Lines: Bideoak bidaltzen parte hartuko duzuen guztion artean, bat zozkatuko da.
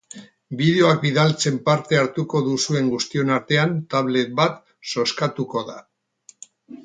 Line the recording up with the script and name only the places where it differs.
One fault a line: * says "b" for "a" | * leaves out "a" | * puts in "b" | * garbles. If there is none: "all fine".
* puts in "tablet"